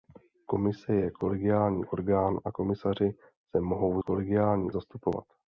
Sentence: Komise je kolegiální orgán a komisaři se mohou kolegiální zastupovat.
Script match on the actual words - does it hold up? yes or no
yes